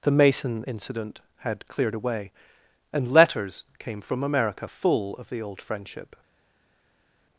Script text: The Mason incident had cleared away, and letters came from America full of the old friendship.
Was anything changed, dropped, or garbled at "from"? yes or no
no